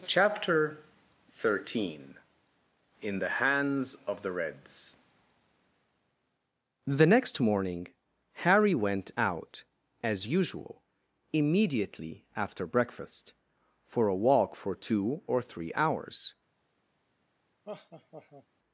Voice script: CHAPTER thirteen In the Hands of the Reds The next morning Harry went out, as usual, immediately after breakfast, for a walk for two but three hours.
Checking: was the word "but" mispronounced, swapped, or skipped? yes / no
yes